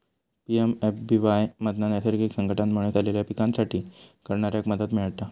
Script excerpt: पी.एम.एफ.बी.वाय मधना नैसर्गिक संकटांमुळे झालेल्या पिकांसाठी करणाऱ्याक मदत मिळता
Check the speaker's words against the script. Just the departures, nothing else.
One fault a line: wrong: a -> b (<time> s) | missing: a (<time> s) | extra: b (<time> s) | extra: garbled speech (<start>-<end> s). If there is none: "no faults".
no faults